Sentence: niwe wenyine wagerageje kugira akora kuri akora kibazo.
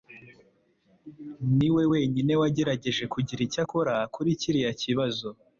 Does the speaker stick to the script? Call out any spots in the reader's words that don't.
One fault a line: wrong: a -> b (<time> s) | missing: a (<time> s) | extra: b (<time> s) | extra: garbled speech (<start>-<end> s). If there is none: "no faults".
extra: icyo (3.5 s)
wrong: akora -> kiriya (4.4 s)